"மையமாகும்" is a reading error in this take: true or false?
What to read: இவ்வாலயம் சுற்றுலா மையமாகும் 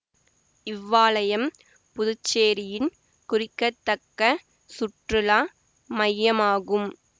false